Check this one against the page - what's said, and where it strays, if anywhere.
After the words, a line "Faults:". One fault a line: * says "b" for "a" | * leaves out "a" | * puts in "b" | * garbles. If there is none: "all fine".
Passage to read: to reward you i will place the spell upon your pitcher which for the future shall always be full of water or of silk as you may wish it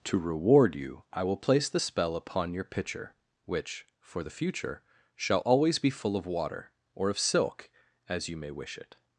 to reward you i will place the spell upon your pitcher which for the future shall always be full of water or of silk as you may wish it
Faults:
all fine